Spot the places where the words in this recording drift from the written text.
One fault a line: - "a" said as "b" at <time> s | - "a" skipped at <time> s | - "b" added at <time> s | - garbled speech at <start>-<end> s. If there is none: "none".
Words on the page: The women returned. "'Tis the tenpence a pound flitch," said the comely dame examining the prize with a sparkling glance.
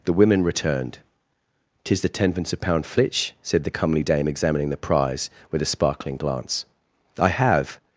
- "I have" added at 7.2 s